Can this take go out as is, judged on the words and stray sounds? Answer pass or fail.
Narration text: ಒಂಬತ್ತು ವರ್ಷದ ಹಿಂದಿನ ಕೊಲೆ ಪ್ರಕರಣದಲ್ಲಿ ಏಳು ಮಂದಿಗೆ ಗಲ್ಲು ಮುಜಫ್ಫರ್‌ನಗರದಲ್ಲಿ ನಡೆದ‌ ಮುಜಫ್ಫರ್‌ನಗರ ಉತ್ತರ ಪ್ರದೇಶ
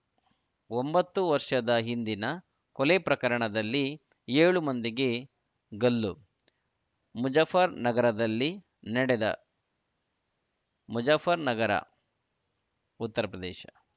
pass